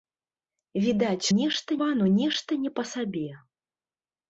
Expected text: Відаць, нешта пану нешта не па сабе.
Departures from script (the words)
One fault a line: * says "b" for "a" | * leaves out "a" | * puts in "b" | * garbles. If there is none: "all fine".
all fine